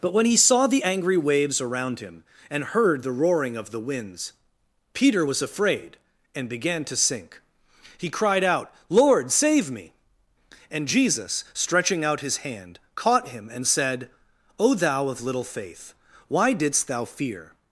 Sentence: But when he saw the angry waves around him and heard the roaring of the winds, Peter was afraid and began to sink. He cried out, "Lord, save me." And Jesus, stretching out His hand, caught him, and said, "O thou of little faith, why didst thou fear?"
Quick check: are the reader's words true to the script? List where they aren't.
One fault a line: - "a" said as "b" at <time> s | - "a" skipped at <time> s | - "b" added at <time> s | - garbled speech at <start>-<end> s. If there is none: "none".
none